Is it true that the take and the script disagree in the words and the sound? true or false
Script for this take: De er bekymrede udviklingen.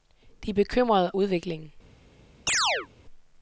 true